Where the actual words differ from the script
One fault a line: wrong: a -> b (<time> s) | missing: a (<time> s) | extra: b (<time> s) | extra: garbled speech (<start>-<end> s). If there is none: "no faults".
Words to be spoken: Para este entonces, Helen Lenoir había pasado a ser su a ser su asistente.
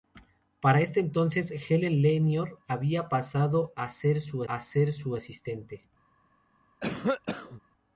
no faults